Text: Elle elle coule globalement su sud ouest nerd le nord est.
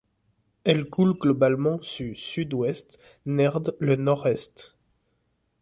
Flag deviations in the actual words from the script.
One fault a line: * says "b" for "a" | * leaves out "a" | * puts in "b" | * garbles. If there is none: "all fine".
* leaves out "elle"